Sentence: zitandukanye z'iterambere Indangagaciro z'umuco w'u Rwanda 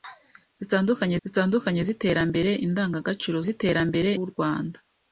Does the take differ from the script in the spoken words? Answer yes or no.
yes